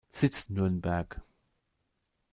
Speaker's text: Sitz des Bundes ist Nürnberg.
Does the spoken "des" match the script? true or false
false